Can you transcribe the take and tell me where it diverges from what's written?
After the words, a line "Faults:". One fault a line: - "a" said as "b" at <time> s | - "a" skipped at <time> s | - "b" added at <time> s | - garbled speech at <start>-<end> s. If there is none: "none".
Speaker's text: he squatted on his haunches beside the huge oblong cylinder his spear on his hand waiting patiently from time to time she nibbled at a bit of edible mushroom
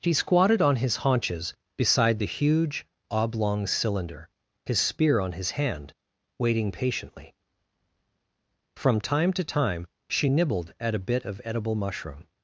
he squatted on his haunches beside the huge oblong cylinder his spear on his hand waiting patiently from time to time she nibbled at a bit of edible mushroom
Faults:
none